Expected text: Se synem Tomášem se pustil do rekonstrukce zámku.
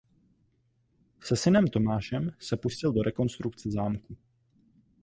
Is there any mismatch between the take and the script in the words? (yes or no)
no